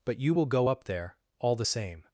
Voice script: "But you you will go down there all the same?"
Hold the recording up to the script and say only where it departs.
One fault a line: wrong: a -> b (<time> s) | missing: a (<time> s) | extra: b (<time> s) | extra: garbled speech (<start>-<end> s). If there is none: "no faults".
missing: you (0.3 s)
wrong: down -> up (0.7 s)